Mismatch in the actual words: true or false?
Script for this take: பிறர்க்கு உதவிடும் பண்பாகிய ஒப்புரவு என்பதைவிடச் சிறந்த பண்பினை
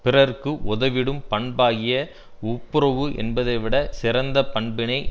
false